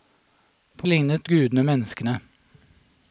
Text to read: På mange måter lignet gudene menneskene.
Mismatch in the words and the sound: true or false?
true